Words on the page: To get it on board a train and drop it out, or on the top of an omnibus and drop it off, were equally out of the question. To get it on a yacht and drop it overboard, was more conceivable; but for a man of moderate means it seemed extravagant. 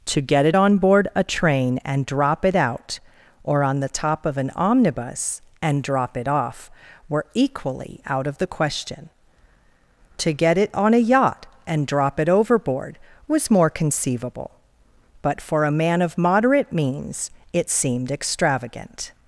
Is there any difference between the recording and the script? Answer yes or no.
no